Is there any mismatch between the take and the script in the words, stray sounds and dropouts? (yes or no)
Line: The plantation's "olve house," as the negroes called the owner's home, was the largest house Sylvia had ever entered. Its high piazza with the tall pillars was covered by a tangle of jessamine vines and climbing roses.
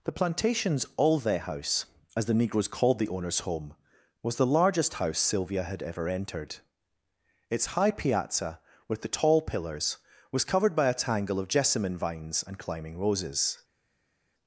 no